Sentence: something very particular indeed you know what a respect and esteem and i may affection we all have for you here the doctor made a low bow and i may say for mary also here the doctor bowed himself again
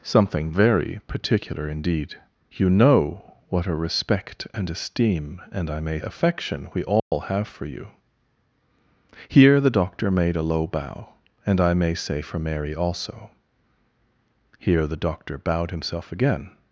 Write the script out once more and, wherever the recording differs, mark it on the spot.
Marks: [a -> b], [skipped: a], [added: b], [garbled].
something very particular indeed you know what a respect and esteem and i may affection we all have for you here the doctor made a low bow and i may say for mary also here the doctor bowed himself again